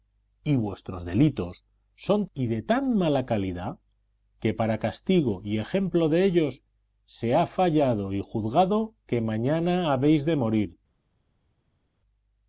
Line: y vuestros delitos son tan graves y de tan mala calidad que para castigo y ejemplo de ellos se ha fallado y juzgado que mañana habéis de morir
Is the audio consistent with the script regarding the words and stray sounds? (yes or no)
no